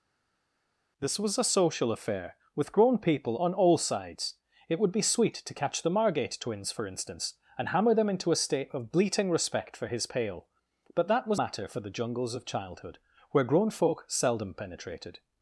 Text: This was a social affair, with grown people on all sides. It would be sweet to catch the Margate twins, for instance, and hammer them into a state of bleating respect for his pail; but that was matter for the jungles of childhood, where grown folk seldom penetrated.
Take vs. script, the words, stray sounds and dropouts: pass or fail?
pass